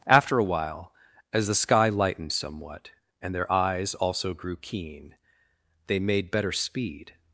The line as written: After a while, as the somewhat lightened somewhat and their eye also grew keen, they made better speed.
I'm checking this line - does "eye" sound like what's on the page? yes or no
no